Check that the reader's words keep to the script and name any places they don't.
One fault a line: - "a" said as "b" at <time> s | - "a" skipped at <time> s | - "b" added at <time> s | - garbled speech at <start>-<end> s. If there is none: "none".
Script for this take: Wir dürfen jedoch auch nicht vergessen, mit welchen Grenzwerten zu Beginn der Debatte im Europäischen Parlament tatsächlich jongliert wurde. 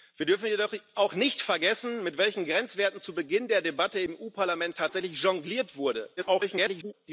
- garbled speech at 6.2-6.9 s